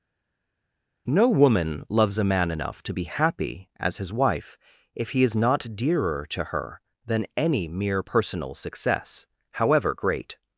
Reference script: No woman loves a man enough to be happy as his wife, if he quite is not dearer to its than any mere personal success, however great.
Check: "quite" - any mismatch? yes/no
yes